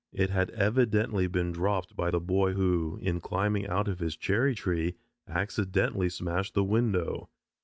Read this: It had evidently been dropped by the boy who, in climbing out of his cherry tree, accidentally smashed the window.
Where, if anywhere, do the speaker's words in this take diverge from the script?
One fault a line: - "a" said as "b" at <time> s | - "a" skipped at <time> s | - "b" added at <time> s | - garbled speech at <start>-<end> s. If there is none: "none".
none